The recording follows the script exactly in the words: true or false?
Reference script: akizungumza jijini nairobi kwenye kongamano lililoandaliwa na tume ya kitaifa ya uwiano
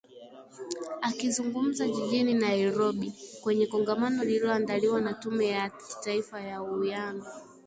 true